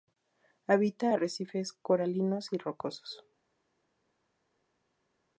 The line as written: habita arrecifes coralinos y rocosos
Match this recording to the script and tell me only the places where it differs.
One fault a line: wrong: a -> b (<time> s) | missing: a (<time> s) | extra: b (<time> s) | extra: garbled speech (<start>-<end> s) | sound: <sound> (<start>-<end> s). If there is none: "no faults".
no faults